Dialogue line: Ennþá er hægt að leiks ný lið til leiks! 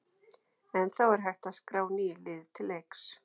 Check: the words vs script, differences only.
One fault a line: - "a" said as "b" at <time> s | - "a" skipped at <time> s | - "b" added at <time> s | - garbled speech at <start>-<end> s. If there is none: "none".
- "leiks" said as "skrá" at 1.6 s